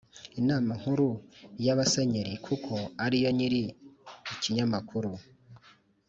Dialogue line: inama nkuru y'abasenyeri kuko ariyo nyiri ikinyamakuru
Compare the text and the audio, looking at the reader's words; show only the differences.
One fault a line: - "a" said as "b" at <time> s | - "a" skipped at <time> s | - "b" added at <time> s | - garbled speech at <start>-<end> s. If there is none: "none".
none